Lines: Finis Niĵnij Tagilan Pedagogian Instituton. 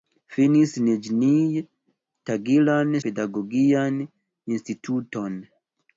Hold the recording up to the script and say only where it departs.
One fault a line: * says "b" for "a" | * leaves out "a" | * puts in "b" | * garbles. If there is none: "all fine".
all fine